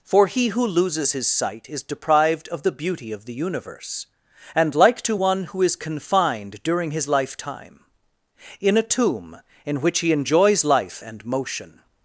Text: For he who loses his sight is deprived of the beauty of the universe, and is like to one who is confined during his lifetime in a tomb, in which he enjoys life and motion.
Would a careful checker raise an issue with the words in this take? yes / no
yes